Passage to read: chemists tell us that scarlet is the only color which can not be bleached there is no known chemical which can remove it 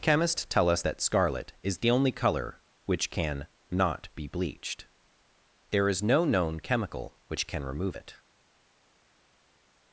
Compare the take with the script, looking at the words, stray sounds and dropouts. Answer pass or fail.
pass